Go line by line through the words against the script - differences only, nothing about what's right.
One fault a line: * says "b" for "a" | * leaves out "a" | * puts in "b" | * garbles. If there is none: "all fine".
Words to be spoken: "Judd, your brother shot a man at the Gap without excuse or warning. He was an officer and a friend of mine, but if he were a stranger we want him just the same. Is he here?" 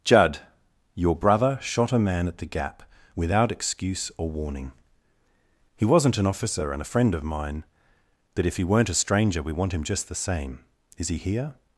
* says "wasn't" for "was"
* says "weren't" for "were"